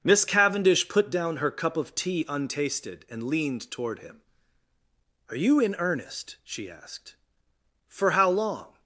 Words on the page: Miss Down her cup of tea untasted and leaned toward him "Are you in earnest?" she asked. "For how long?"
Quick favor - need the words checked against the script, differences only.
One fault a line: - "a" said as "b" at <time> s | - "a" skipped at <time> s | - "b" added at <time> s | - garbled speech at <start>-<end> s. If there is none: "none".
- "Cavendish put" added at 0.2 s